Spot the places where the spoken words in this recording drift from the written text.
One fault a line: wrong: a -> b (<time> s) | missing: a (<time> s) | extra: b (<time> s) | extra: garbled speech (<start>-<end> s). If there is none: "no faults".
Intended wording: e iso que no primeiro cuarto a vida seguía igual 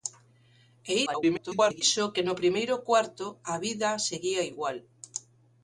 extra: garbled speech (1.1-1.8 s)